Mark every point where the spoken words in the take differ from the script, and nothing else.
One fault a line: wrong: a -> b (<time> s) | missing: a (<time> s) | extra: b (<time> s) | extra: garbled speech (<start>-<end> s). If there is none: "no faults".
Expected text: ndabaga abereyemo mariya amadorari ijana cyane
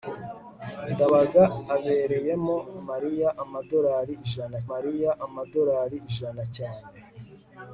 extra: mariya amadorari ijana (4.7 s)